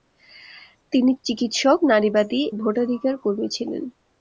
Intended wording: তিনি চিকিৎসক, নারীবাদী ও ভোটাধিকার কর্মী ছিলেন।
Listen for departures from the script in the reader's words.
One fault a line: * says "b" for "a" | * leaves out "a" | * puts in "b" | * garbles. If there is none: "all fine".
* leaves out "ও"